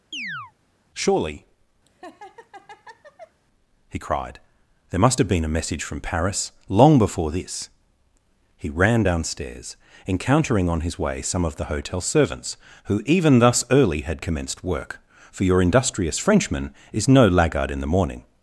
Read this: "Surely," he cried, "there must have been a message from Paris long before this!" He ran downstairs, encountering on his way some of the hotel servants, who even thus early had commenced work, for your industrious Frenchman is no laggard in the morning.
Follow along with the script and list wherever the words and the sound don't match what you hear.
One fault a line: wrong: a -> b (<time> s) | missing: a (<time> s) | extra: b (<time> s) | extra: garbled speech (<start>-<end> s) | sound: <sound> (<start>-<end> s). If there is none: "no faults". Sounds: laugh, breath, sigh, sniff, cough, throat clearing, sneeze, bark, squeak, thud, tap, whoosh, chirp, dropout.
sound: chirp (0.1-0.5 s)
sound: laugh (1.9-3.4 s)